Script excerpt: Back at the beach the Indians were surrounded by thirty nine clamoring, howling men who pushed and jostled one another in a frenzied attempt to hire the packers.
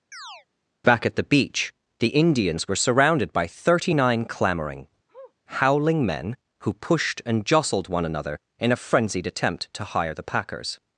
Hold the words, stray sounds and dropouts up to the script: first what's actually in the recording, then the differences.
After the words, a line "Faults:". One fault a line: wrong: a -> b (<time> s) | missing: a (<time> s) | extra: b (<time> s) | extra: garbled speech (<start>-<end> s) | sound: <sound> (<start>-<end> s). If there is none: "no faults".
Back at the beach the Indians were surrounded by thirty nine clamoring, howling men who pushed and jostled one another in a frenzied attempt to hire the packers.
Faults:
sound: chirp (0.1-0.5 s)
sound: sniff (5.1-5.3 s)